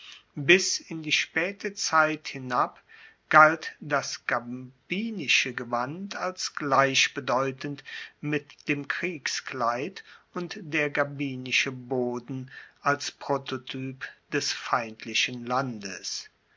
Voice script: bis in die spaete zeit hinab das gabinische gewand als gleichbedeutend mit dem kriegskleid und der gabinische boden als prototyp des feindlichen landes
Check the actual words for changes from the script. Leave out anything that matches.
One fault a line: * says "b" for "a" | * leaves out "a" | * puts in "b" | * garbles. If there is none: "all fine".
* puts in "galt"